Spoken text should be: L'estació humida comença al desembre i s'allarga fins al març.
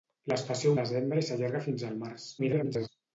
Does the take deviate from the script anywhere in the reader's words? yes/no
yes